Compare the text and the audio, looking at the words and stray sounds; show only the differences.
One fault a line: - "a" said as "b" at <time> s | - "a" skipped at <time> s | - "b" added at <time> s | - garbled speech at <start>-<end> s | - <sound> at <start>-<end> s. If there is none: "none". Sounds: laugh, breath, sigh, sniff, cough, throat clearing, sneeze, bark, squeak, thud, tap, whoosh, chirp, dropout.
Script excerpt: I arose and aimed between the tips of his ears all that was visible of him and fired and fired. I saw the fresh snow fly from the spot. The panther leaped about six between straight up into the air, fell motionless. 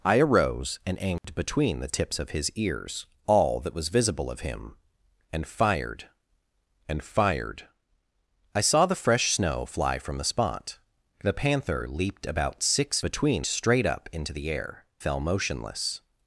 - dropout at 1.2-1.2 s